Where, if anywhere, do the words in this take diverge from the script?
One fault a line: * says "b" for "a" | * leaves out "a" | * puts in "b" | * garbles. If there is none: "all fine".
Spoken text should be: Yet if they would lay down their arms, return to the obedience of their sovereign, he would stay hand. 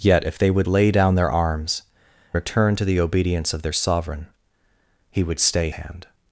all fine